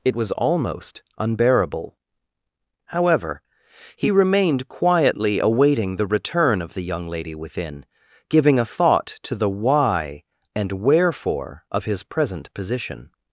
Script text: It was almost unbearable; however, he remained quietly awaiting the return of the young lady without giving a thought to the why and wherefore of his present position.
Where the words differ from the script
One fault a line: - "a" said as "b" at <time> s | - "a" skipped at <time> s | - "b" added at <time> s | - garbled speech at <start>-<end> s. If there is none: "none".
- "without" said as "within" at 7.3 s